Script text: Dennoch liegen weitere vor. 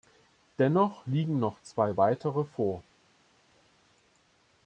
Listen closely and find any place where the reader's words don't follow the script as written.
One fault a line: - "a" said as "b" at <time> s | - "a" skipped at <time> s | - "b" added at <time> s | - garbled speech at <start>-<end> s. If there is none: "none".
- "noch zwei" added at 1.4 s